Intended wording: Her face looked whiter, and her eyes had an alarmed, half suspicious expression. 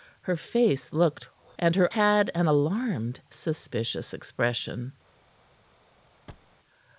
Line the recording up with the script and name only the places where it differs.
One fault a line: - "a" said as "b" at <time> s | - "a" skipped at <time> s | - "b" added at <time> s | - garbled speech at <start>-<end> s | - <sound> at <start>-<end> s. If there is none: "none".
- "whiter" skipped at 1.2 s
- "eyes" skipped at 1.9 s
- "half" skipped at 3.2 s
- thud at 6.3-6.5 s